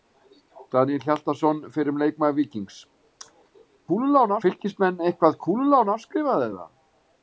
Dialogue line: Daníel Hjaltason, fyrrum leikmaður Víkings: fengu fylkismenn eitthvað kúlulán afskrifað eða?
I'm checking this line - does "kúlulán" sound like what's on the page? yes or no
yes